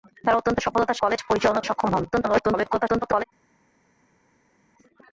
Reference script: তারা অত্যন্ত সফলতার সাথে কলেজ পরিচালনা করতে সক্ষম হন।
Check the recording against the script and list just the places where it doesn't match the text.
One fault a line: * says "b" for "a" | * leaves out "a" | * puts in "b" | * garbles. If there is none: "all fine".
* leaves out "সাথে"
* leaves out "করতে"
* garbles